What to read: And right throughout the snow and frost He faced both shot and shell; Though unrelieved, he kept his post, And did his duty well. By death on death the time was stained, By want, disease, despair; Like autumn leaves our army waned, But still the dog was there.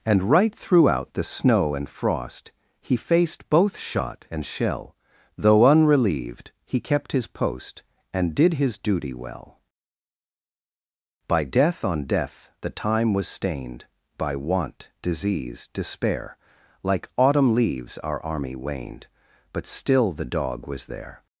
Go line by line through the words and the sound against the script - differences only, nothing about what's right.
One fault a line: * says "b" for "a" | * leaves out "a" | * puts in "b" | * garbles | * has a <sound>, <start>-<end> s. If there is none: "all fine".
all fine